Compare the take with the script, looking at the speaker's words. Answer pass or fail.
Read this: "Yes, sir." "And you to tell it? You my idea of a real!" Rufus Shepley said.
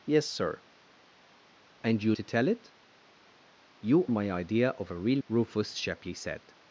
pass